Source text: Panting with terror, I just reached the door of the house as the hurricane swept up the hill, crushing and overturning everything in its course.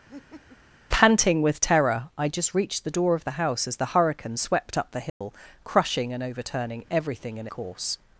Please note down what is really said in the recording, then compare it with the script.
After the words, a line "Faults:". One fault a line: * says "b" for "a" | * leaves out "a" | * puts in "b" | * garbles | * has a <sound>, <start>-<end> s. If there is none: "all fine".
Panting with terror, I just reached the door of the house as the hurricane swept up the hill, crushing and overturning everything in course.
Faults:
* has a laugh, 0.1-0.6 s
* has a dropout, 5.1-5.2 s
* leaves out "its"